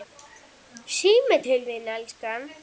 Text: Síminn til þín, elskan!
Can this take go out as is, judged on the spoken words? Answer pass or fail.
pass